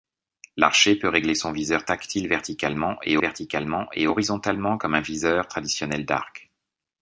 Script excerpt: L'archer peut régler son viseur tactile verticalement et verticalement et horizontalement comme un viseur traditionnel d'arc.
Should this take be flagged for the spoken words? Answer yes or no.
no